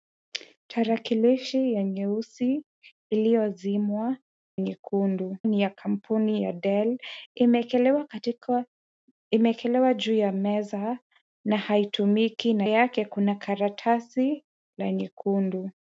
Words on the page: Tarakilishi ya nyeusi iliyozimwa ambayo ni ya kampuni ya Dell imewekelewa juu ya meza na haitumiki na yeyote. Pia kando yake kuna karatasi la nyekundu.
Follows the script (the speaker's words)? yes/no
no